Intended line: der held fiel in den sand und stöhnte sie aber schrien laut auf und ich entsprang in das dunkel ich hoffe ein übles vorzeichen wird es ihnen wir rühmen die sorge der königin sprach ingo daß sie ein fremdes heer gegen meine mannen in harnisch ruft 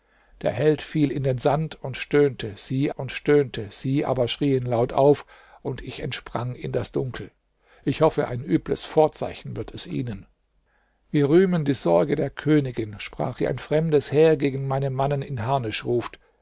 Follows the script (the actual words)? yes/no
no